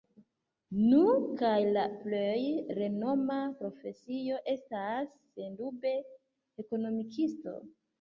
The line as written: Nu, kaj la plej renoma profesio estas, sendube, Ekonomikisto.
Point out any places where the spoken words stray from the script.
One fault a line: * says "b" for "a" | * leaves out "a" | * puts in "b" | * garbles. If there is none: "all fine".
all fine